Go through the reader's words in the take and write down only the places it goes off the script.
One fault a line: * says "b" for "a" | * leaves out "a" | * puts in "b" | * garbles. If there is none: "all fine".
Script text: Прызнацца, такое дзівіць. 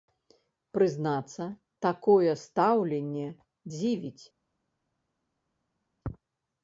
* puts in "стаўленне"